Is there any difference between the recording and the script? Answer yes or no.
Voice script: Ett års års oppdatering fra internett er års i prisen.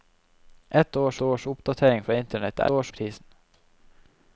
no